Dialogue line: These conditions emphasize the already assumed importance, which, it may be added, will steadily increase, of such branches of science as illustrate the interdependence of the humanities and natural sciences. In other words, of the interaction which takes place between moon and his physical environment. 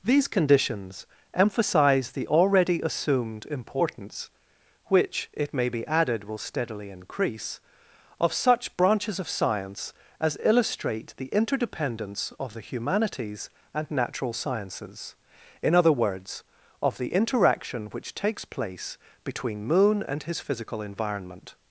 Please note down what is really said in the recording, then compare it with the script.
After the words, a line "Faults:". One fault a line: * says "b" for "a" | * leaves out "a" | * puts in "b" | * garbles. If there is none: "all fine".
These conditions emphasize the already assumed importance, which, it may be added, will steadily increase, of such branches of science as illustrate the interdependence of the humanities and natural sciences. In other words, of the interaction which takes place between moon and his physical environment.
Faults:
all fine